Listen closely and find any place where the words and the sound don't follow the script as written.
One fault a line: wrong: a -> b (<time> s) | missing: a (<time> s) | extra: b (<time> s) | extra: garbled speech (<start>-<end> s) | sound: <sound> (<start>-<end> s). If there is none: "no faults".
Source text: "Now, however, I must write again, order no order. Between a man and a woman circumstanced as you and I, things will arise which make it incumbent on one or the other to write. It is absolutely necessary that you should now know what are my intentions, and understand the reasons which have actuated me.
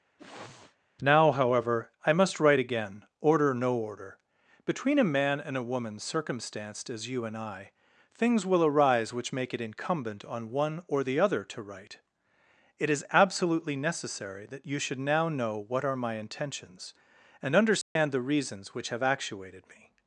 sound: sniff (0.2-0.8 s)
sound: dropout (17.8-18.0 s)